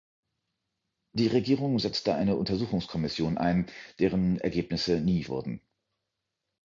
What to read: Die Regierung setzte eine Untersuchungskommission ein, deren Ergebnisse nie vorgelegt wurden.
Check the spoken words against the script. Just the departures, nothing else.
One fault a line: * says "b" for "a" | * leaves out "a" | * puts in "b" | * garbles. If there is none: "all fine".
* leaves out "vorgelegt"